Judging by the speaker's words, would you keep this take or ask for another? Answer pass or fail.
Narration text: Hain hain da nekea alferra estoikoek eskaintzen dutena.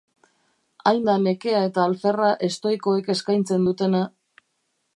fail